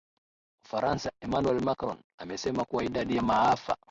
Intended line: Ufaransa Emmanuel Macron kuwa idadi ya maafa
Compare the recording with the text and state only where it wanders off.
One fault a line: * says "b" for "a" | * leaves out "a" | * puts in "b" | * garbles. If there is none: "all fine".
* puts in "amesema"